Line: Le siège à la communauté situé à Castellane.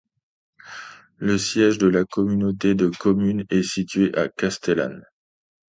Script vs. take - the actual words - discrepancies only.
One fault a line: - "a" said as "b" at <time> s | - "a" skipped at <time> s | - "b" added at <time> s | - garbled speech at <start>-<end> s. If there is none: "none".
- "à" said as "de" at 1.8 s
- "de communes est" added at 2.7 s